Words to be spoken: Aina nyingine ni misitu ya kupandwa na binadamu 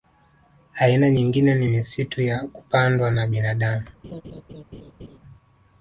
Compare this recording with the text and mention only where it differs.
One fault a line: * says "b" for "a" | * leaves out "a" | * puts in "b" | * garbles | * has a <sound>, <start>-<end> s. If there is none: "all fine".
* has a laugh, 4.0-5.2 s